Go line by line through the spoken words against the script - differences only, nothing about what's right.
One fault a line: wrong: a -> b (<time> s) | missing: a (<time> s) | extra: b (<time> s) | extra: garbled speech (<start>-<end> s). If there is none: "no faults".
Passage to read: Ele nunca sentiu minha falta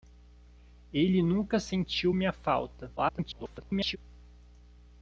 extra: garbled speech (3.0-4.0 s)